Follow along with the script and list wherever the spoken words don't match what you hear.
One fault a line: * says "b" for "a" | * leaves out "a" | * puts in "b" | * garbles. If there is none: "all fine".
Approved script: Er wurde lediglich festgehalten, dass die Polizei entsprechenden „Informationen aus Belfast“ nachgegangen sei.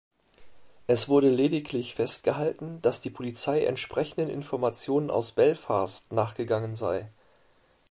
* says "Es" for "Er"